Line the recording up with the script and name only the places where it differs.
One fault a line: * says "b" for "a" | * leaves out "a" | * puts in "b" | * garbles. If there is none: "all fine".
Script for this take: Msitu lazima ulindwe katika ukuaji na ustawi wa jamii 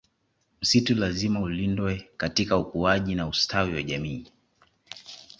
all fine